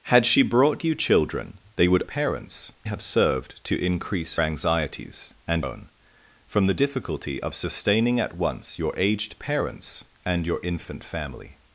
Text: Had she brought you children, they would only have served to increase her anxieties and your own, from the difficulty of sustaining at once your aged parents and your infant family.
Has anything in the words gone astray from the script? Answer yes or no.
yes